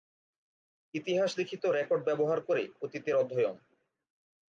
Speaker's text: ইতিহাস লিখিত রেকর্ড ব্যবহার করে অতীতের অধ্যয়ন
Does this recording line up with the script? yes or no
yes